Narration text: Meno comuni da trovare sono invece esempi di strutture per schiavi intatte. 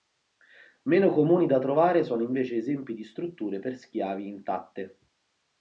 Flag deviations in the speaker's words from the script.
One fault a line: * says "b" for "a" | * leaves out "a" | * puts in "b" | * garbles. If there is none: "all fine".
all fine